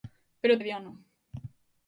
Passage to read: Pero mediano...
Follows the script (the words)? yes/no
yes